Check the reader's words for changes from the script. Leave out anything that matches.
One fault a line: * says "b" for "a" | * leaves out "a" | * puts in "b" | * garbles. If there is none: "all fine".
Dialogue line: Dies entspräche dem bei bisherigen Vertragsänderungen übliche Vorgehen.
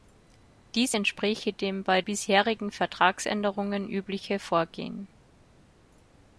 all fine